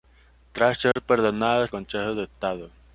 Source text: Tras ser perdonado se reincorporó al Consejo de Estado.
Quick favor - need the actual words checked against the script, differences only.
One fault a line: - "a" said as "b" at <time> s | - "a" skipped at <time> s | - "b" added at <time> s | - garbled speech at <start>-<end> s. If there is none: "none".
- "se reincorporó al" skipped at 1.7 s